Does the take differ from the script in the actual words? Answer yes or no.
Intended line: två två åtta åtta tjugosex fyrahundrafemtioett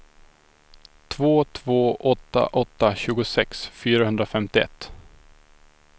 no